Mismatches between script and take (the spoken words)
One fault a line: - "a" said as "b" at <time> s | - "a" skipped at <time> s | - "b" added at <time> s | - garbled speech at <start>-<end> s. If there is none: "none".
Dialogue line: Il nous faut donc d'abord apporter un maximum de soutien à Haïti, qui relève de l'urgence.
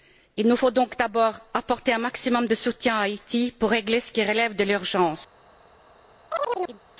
- "pour régler ce" added at 3.6 s